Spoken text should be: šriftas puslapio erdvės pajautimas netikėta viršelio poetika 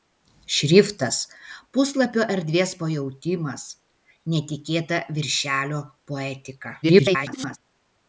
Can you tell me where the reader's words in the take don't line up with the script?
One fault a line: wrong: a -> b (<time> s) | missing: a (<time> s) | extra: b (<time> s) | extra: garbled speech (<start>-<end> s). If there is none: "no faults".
extra: garbled speech (6.8-7.6 s)